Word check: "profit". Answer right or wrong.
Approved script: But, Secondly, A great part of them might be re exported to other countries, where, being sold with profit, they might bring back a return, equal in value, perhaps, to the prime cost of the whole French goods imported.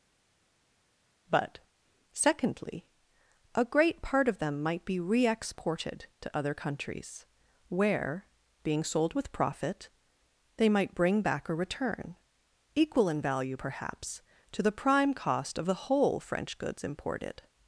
right